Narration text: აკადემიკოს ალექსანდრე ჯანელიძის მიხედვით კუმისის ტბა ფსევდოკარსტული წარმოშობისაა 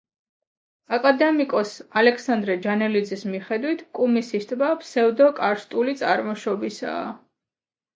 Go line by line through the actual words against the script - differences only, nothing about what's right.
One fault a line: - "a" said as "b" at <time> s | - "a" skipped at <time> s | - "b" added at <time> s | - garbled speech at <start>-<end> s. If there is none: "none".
none